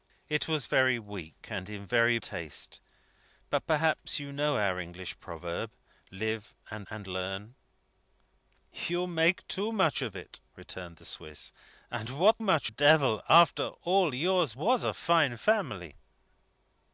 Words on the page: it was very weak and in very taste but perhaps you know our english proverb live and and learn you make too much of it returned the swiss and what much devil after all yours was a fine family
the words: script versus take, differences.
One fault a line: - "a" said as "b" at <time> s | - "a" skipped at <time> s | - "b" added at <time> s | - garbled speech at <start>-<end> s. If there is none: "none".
none